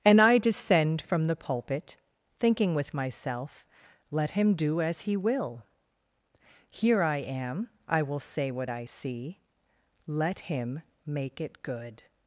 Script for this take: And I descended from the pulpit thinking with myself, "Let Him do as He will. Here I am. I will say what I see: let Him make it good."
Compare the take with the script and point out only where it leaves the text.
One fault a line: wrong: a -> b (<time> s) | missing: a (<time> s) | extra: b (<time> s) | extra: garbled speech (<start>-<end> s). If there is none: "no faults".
wrong: descended -> descend (0.4 s)